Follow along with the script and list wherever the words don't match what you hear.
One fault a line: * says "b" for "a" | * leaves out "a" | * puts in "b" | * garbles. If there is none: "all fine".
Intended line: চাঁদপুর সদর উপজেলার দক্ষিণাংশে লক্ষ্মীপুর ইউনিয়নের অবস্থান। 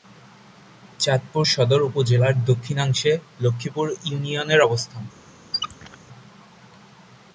all fine